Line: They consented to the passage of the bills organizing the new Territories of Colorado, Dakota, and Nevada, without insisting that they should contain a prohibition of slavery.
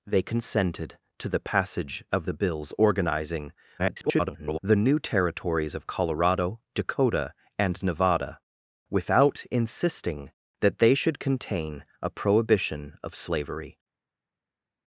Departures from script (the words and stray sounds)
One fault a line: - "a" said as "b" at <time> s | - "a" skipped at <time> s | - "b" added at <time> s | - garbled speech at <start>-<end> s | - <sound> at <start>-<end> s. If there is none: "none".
- garbled speech at 3.8-4.6 s